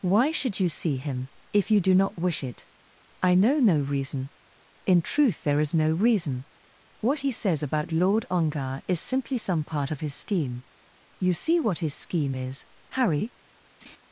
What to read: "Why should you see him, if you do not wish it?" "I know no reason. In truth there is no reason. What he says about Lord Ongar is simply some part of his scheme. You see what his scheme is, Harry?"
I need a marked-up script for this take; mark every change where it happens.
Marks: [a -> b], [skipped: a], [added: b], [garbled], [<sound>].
"Why should you see him, if you do not wish it?" "I know no reason. In truth there is no reason. What he says about Lord Ongar is simply some part of his scheme. You see what his scheme is, Harry?" [laugh]